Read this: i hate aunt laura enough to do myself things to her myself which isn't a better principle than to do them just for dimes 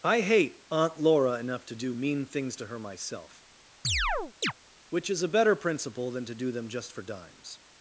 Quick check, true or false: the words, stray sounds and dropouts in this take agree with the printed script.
false